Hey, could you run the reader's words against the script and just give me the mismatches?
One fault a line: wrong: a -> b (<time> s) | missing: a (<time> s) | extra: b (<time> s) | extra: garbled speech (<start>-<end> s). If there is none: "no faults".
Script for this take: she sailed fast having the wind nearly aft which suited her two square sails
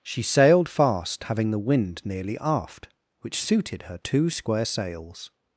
no faults